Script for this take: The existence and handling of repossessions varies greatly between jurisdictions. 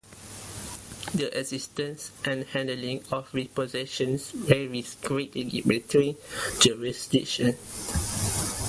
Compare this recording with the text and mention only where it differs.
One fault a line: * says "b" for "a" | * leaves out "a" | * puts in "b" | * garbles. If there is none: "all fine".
all fine